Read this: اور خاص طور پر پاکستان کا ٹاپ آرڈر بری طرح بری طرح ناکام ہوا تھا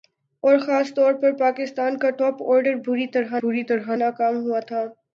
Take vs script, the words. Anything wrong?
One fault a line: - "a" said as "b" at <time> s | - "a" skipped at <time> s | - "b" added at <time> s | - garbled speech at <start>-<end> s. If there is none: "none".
none